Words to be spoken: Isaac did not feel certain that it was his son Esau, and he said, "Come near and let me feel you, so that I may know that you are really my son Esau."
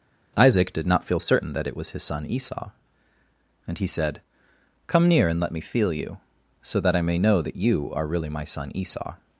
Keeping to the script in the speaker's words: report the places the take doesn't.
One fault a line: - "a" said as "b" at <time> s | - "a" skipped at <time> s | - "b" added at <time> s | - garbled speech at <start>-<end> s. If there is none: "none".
none